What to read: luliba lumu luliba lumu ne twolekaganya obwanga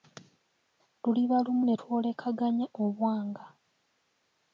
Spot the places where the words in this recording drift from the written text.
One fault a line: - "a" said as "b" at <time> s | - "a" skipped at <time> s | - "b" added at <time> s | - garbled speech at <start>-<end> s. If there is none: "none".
- "luliba lumu" skipped at 1.6 s